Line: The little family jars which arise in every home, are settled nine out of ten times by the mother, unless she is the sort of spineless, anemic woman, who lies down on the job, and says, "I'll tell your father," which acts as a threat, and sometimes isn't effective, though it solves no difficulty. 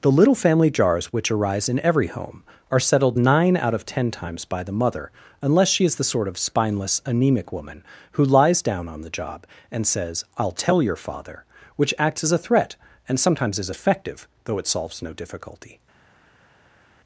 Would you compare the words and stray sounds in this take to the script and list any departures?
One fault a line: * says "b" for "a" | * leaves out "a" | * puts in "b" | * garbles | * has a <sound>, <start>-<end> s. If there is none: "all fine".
* says "is" for "isn't"